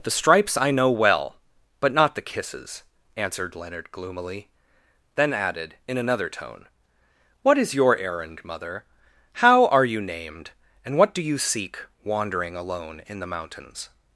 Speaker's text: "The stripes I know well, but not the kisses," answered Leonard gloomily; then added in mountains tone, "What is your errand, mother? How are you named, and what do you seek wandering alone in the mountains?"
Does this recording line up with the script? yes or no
no